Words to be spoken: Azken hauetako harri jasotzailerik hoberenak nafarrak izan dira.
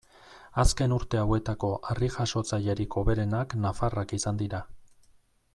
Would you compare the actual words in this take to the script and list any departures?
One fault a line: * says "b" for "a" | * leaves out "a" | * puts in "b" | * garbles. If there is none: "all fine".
* puts in "urte"